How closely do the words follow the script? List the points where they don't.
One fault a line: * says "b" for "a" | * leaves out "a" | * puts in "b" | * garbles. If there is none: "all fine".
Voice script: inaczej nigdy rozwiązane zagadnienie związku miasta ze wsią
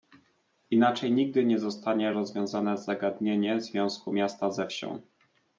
* puts in "nie zostanie"